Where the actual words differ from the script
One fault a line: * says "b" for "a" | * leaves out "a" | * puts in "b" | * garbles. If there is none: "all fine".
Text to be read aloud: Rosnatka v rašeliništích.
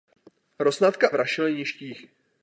all fine